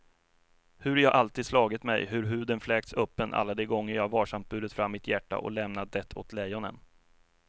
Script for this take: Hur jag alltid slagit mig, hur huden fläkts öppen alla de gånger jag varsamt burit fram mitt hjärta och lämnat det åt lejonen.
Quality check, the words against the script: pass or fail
pass